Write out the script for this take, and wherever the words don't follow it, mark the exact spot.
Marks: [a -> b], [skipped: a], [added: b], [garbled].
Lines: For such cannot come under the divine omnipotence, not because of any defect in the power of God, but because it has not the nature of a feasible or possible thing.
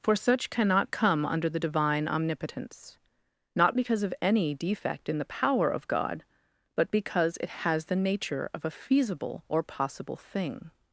For such cannot come under the divine omnipotence, not because of any defect in the power of God, but because it has [skipped: not] the nature of a feasible or possible thing.